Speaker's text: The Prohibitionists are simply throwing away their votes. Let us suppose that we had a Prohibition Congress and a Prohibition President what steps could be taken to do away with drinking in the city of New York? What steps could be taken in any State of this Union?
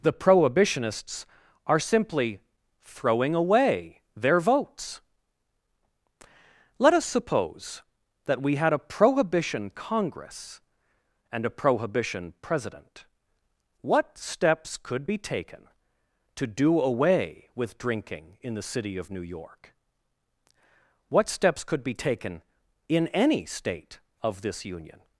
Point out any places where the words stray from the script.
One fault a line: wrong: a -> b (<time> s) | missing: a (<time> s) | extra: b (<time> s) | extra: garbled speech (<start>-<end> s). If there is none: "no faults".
no faults